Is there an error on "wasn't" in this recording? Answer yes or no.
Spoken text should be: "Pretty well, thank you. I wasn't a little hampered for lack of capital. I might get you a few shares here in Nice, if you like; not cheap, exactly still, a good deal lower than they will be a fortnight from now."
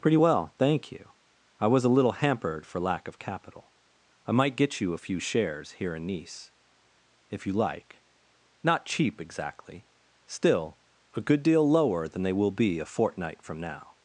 yes